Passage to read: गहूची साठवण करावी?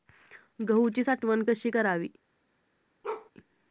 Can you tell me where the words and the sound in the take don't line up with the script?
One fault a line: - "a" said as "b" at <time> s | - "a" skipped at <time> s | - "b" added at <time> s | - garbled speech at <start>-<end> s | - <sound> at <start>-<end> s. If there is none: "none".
- "कशी" added at 1.5 s
- bark at 3.0-3.3 s